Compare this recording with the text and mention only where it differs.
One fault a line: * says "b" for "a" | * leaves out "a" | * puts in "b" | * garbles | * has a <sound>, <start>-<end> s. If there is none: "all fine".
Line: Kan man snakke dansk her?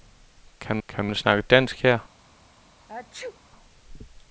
* puts in "kan"
* has a sneeze, 2.9-3.4 s